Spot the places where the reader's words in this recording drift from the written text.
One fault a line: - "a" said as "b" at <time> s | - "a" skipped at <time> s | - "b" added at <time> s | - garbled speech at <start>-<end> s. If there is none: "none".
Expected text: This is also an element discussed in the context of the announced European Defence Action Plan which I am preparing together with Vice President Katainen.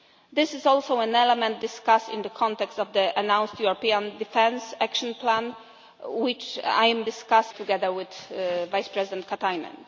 - "preparing" said as "discussed" at 7.0 s